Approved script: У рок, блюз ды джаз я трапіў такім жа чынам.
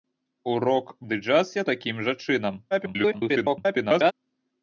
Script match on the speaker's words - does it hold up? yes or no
no